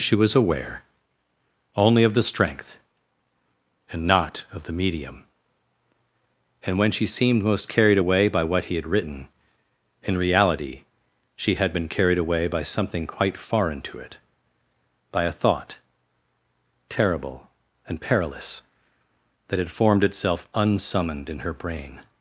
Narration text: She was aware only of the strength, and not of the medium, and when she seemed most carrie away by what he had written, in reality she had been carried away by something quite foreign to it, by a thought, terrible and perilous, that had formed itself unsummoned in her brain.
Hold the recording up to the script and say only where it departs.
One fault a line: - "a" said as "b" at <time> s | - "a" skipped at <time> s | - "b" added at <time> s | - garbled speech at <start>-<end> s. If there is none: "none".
- "carrie" said as "carried" at 7.7 s